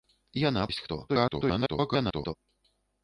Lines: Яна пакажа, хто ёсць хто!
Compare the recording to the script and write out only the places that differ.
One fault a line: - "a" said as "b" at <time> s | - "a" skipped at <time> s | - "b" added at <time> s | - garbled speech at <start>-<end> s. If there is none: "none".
- "пакажа хто" skipped at 0.6 s
- garbled speech at 1.1-2.3 s